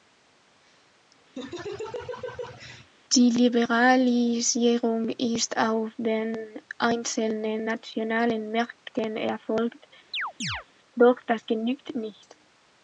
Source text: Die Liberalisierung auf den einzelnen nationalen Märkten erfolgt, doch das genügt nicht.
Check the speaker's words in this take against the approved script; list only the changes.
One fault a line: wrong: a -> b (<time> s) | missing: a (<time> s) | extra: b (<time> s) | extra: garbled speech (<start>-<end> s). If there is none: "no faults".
extra: ist (5.1 s)